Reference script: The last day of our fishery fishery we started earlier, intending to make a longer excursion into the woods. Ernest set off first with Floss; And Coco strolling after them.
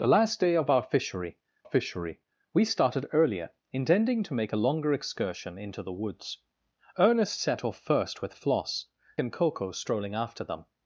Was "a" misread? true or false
false